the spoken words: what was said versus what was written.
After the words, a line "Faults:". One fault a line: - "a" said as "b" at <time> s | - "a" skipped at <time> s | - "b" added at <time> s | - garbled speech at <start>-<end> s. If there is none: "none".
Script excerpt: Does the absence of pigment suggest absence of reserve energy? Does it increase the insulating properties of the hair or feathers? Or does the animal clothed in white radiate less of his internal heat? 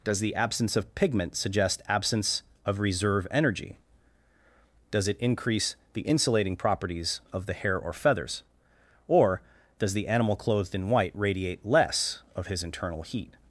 Does the absence of pigment suggest absence of reserve energy? Does it increase the insulating properties of the hair or feathers? Or does the animal clothed in white radiate less of his internal heat?
Faults:
none